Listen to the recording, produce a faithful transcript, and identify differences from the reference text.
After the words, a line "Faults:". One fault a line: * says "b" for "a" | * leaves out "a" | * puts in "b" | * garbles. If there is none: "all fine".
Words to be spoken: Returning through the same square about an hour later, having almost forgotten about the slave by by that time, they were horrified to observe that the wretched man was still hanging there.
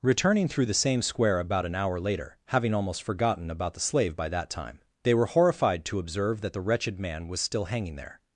Returning through the same square about an hour later, having almost forgotten about the slave by that time, they were horrified to observe that the wretched man was still hanging there.
Faults:
* leaves out "by"